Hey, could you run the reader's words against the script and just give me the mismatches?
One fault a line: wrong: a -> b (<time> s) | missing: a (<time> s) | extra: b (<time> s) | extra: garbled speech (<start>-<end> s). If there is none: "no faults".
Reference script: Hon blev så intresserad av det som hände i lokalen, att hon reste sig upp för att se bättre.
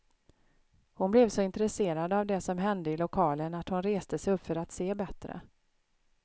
no faults